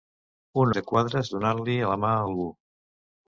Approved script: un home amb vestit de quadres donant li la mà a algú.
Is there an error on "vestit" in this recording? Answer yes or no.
yes